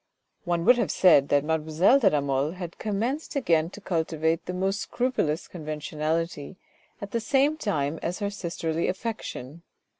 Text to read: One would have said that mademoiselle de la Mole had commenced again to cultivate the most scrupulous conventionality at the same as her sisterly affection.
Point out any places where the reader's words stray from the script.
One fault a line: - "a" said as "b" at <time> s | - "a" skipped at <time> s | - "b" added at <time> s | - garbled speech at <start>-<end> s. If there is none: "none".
- "time" added at 7.5 s